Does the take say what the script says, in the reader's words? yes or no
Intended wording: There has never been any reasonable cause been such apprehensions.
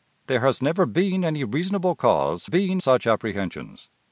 yes